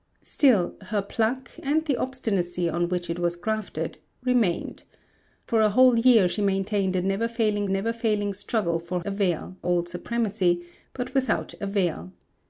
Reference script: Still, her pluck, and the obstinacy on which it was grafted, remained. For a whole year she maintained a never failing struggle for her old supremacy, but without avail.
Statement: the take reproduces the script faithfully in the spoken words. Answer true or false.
false